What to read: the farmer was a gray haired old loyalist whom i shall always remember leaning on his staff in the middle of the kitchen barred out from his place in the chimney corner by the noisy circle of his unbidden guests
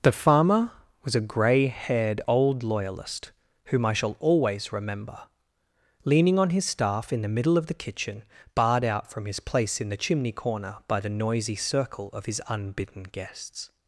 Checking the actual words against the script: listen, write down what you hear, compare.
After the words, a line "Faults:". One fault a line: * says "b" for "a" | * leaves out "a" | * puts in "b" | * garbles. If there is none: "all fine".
the farmer was a gray haired old loyalist whom i shall always remember leaning on his staff in the middle of the kitchen barred out from his place in the chimney corner by the noisy circle of his unbidden guests
Faults:
all fine